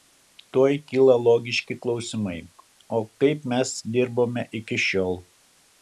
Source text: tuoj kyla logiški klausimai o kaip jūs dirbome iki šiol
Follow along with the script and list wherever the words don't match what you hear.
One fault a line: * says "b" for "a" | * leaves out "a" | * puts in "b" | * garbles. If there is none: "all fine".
* says "mes" for "jūs"